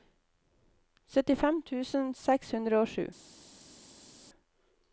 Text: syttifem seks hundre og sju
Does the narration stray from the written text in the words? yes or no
yes